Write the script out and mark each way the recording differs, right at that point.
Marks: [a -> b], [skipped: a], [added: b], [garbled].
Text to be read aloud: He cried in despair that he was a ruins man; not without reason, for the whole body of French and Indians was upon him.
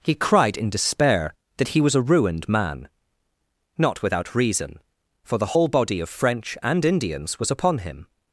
He cried in despair that he was a [ruins -> ruined] man; not without reason, for the whole body of French and Indians was upon him.